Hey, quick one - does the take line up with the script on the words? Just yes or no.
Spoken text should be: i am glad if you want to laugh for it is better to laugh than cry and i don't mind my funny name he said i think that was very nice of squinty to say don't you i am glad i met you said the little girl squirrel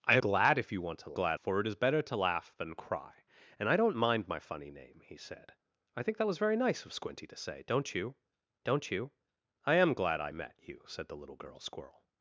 no